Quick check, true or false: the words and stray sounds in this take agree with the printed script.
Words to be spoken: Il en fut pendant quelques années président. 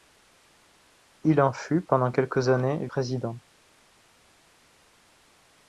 true